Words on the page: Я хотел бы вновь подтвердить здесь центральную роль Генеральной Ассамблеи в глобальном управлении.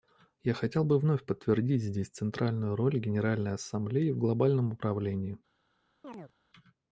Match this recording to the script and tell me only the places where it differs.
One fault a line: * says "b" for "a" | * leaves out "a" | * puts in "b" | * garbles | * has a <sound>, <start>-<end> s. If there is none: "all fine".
* has a chirp, 6.0-6.3 s